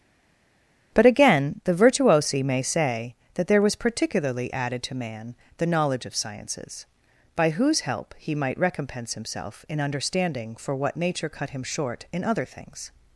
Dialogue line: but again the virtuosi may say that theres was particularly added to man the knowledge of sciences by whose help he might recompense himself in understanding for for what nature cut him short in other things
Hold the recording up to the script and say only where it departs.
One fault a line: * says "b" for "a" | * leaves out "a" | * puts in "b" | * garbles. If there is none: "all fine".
* says "there" for "theres"
* leaves out "for"